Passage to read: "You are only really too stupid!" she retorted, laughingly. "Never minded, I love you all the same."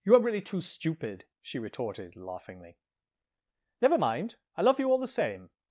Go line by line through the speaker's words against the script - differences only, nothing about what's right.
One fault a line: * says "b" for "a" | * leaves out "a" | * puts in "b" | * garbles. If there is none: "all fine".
* leaves out "only"
* says "mind" for "minded"